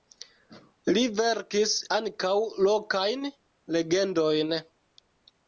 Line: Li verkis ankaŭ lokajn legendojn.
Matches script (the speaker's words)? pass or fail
pass